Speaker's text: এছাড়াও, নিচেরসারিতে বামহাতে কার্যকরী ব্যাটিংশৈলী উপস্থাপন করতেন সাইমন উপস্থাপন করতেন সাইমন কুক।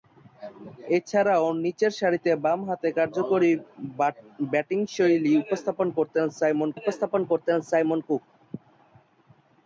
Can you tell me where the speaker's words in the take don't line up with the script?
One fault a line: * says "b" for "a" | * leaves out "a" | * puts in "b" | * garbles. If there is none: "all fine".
all fine